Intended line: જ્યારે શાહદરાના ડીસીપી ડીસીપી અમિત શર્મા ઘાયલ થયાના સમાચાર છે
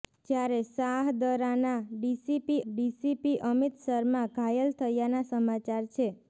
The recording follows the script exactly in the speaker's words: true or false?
true